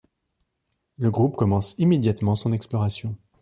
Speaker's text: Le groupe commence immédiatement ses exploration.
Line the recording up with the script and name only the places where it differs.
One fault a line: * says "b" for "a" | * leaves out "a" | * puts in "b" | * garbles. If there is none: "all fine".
* says "son" for "ses"